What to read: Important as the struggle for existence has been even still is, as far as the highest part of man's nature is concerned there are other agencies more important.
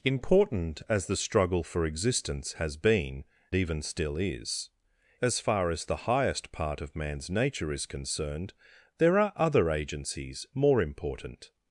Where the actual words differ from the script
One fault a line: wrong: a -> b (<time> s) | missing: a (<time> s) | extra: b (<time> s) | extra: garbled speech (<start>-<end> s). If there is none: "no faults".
no faults